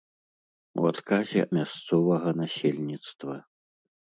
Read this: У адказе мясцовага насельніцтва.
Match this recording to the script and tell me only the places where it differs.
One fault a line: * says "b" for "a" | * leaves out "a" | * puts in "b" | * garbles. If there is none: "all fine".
all fine